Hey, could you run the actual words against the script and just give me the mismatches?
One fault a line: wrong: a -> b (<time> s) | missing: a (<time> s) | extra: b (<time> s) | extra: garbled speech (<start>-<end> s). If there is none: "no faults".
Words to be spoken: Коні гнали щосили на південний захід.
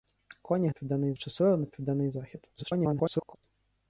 wrong: гнали -> південний (0.7 s)
extra: garbled speech (2.6-3.4 s)